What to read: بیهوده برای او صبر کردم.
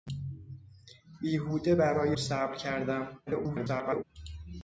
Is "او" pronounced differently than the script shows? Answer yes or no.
yes